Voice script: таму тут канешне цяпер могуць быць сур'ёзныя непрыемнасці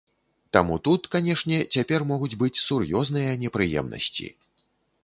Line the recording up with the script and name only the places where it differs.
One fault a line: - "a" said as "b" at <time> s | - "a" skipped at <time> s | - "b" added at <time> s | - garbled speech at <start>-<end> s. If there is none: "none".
none